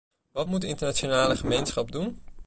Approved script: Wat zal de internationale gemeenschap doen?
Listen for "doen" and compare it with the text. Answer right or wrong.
right